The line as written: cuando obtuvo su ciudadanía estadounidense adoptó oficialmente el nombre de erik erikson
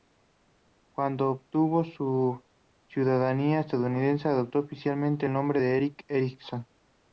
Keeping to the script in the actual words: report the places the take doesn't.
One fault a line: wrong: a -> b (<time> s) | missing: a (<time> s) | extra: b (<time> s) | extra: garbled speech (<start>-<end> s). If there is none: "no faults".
no faults